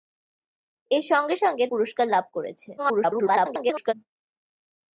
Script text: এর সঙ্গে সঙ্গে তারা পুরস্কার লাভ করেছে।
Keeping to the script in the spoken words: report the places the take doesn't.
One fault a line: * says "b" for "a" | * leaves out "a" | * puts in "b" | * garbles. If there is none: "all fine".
* leaves out "তারা"
* garbles